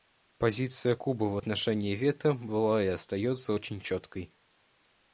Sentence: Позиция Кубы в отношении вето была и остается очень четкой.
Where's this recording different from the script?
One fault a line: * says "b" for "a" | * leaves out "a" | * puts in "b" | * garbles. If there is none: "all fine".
all fine